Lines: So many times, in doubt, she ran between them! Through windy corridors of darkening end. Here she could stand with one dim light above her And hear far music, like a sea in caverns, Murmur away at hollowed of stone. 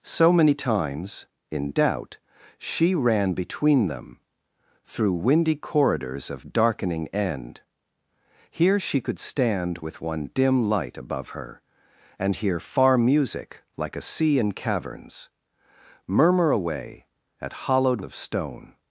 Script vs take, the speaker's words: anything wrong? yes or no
no